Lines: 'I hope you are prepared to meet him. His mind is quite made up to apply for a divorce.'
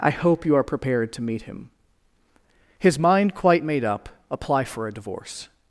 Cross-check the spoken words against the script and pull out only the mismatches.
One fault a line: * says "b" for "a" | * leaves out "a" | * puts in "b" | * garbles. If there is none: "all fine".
* leaves out "is"
* leaves out "to"